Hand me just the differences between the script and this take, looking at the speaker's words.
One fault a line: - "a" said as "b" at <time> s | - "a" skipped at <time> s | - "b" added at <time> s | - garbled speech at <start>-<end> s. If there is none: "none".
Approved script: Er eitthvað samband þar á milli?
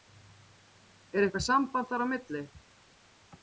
none